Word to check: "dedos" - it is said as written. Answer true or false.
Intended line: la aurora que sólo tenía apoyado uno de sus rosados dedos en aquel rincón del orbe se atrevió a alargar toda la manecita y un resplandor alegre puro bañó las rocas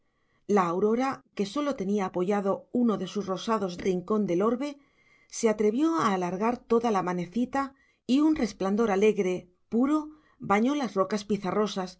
false